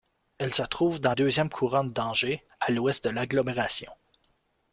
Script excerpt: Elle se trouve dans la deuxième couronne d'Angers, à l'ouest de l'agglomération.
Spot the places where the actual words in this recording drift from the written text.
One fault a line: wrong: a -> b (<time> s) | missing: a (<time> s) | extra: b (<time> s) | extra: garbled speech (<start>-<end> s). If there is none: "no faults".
missing: la (1.1 s)